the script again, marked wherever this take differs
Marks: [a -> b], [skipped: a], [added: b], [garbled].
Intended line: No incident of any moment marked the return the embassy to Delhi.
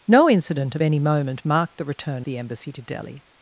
No incident of any moment marked the return the embassy to Delhi.